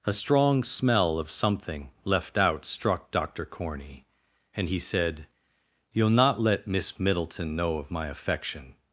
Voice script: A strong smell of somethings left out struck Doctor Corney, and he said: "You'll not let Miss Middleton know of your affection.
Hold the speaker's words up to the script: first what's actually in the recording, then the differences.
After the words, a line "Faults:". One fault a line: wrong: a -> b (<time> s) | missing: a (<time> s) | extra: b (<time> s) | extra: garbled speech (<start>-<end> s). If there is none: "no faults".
A strong smell of something left out struck Doctor Corney, and he said: "You'll not let Miss Middleton know of my affection.
Faults:
wrong: somethings -> something (1.3 s)
wrong: your -> my (7.9 s)